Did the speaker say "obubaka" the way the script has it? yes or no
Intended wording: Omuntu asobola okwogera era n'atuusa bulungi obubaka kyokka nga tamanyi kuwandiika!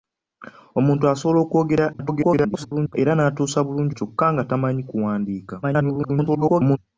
no